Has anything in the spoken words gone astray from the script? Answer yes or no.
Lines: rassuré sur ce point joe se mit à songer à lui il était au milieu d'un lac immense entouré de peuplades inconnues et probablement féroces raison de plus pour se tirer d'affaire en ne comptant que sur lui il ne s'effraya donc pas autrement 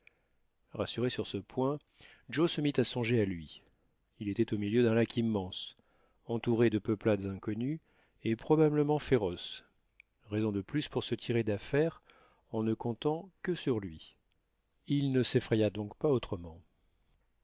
no